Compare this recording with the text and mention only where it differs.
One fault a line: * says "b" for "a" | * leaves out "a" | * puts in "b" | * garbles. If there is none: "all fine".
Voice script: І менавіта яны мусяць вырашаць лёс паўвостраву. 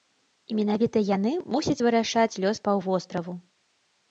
all fine